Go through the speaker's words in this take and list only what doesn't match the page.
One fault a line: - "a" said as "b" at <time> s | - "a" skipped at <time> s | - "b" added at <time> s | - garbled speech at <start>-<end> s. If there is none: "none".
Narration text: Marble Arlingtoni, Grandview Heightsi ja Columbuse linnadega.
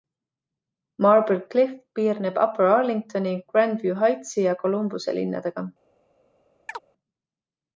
- "Cliff piirneb Upper" added at 1.5 s